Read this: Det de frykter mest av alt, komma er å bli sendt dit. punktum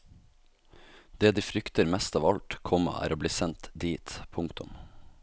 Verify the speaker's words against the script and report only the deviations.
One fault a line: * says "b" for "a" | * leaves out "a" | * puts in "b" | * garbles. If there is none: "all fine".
all fine